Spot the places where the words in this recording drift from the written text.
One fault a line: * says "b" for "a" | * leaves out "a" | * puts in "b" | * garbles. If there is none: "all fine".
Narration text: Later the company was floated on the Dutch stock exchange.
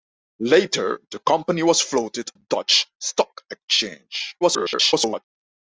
* leaves out "on"
* garbles